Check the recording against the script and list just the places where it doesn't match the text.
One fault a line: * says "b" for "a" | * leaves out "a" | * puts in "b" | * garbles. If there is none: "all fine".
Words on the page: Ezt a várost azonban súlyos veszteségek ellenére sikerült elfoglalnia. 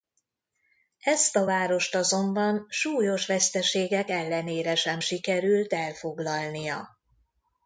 * puts in "sem"